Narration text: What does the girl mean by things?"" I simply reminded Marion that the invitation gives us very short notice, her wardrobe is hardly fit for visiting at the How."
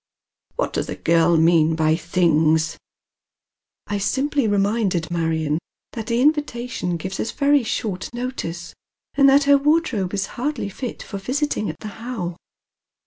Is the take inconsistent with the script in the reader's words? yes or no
yes